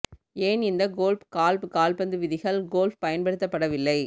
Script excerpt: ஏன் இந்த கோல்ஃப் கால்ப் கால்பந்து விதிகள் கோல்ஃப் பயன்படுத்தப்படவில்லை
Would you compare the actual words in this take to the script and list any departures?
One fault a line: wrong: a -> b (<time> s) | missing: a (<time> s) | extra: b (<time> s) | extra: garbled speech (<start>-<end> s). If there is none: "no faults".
no faults